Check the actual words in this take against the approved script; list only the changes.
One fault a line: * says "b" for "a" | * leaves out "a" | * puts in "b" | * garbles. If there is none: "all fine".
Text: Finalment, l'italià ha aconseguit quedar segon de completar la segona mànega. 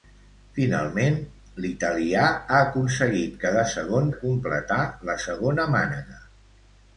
all fine